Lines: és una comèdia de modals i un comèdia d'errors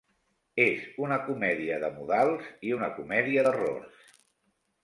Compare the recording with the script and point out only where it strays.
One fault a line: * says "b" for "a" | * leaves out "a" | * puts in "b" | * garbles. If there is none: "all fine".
* says "una" for "un"